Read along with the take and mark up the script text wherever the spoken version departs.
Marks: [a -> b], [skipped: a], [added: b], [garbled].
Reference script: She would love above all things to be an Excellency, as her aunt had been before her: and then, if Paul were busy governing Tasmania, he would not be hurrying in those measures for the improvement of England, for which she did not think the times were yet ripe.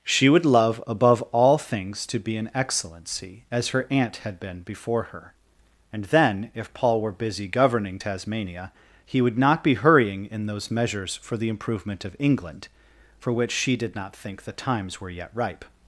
She would love above all things to be an Excellency, as her aunt had been before her: and then, if Paul were busy governing Tasmania, he would not be hurrying in those measures for the improvement of England, for which she did not think the times were yet ripe.